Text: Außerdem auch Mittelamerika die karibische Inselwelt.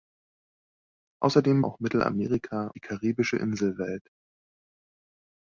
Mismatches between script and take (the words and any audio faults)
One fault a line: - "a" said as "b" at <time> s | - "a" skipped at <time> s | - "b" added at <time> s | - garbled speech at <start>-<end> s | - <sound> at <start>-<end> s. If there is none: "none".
none